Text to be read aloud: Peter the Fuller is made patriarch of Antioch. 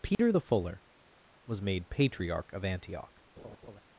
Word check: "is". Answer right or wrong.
wrong